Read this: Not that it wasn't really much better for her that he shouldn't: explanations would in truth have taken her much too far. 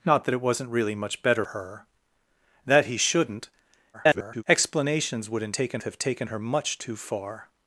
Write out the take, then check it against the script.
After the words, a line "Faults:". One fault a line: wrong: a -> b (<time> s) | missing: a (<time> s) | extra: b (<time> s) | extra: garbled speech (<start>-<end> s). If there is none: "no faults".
Not that it wasn't really much better her that he shouldn't: [garbled] explanations would in taken have taken her much too far.
Faults:
missing: for (1.4 s)
extra: garbled speech (3.9-4.4 s)
wrong: truth -> taken (5.5 s)